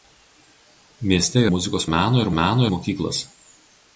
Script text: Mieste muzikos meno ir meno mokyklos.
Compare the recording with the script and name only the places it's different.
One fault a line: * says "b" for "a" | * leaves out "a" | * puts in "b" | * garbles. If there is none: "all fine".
all fine